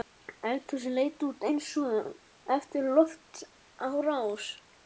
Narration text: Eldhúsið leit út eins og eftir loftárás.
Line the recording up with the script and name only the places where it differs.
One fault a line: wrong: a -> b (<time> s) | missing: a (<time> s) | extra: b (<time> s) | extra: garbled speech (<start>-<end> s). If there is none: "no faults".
no faults